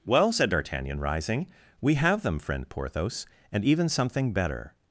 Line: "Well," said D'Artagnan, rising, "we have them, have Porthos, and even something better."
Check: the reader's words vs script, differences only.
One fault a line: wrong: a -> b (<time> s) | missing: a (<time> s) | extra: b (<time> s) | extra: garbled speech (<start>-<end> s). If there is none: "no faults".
wrong: have -> friend (2.4 s)